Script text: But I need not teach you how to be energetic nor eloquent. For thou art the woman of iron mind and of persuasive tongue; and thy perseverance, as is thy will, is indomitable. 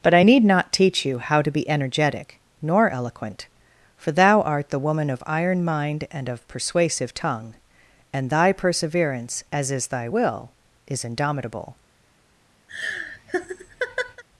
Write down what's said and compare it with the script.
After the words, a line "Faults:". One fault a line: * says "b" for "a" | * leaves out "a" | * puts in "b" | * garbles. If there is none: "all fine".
But I need not teach you how to be energetic nor eloquent. For thou art the woman of iron mind and of persuasive tongue; and thy perseverance, as is thy will, is indomitable.
Faults:
all fine